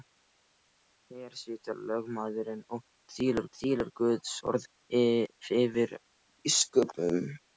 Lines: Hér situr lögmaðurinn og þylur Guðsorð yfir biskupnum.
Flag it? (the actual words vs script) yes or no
yes